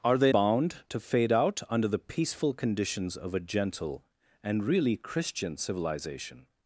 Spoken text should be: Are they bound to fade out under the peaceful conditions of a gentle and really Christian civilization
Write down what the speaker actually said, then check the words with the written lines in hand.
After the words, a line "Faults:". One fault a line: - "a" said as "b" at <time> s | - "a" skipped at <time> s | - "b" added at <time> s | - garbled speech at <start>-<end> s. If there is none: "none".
Are they bound to fade out under the peaceful conditions of a gentle and really Christian civilization
Faults:
none